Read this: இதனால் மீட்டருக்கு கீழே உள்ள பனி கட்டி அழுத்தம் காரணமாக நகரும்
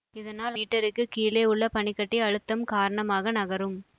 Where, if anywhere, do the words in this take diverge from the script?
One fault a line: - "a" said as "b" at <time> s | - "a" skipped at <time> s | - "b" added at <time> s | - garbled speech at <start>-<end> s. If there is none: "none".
none